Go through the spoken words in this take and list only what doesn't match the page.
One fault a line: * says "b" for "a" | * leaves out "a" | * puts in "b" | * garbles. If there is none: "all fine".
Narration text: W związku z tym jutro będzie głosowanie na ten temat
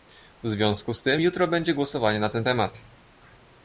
all fine